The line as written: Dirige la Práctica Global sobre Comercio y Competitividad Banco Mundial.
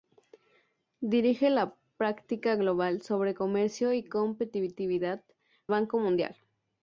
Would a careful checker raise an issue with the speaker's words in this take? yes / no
no